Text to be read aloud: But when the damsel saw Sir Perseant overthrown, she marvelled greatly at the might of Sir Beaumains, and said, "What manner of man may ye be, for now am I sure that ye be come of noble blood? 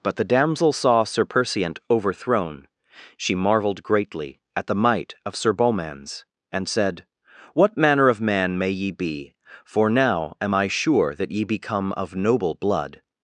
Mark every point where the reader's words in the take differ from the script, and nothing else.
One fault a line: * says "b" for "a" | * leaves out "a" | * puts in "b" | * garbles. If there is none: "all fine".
* leaves out "when"